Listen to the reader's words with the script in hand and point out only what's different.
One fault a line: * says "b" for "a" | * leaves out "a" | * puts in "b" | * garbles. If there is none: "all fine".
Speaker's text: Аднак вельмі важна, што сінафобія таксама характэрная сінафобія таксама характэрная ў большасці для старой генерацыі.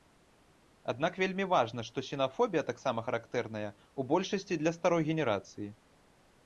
* leaves out "сінафобія таксама характэрная"